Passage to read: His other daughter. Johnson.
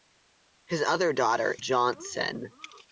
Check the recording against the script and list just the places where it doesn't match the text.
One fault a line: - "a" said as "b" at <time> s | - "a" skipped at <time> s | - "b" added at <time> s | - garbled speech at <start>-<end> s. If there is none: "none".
none